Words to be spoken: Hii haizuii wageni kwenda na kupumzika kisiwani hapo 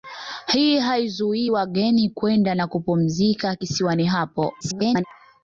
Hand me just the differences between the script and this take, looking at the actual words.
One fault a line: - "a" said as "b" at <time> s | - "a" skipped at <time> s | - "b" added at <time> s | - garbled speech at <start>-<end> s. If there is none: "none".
- garbled speech at 4.6-5.0 s